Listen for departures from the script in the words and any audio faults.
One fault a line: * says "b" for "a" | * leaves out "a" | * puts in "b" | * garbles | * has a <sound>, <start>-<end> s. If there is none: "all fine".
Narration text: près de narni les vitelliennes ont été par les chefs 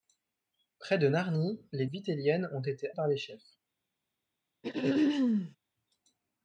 * has a throat clearing, 4.6-5.6 s